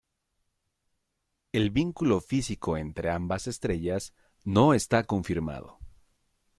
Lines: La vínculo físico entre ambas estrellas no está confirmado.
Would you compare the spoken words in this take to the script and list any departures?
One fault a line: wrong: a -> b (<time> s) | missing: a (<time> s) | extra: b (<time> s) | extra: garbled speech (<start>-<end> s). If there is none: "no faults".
wrong: La -> El (1.5 s)